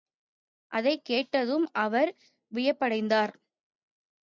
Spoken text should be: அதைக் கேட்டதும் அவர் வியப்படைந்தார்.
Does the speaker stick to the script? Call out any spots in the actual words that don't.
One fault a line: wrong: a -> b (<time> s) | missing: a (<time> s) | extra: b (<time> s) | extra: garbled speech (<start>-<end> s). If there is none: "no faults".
no faults